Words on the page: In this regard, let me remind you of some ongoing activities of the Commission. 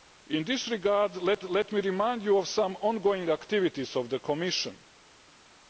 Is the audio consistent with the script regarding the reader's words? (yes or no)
no